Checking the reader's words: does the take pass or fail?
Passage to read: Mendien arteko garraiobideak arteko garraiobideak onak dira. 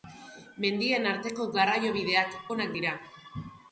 fail